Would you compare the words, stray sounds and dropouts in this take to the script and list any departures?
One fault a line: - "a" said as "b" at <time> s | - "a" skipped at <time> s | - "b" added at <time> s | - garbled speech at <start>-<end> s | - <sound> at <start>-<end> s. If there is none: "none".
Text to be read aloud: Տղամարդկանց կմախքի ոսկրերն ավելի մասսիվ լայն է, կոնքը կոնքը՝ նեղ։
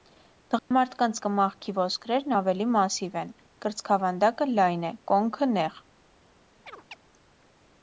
- dropout at 0.6-0.7 s
- "են կրծքավանդակը" added at 3.2 s
- "կոնքը" skipped at 5.5 s
- chirp at 6.7-7.0 s